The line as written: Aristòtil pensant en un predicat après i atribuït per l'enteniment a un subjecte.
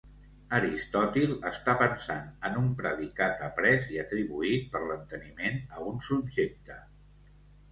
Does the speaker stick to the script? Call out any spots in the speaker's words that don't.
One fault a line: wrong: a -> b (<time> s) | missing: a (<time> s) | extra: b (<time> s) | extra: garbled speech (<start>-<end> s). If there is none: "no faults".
extra: està (1.5 s)